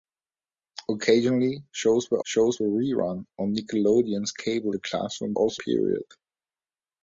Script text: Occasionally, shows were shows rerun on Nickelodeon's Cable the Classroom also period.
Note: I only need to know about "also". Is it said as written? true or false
true